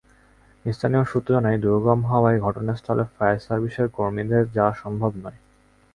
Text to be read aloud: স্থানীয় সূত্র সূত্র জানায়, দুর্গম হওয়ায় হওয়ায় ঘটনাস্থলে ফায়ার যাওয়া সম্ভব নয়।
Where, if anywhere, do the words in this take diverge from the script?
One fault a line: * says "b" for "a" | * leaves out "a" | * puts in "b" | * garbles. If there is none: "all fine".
* leaves out "সূত্র"
* leaves out "হওয়ায়"
* puts in "সার্ভিসের কর্মীদের"